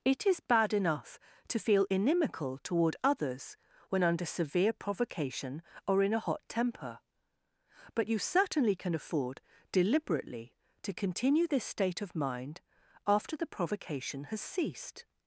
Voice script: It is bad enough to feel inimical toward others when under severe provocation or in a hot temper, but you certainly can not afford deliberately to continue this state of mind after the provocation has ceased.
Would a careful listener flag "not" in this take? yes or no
yes